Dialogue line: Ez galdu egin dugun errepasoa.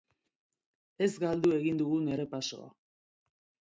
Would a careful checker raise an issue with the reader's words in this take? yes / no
no